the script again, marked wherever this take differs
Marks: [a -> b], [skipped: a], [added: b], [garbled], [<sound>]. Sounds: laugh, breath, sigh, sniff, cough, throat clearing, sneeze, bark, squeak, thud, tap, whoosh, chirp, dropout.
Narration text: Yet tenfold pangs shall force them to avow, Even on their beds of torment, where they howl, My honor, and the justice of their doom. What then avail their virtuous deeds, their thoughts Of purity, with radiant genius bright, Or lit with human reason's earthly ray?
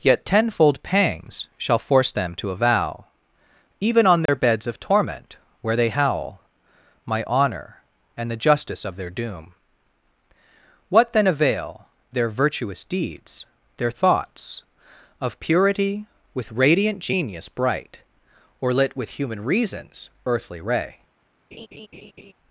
Yet tenfold pangs shall force them to avow, Even on their [dropout] beds of torment, where they howl, My honor, and the justice of their doom. What then avail their virtuous deeds, their thoughts Of purity, with radiant genius bright, Or lit with human reason's earthly ray? [laugh]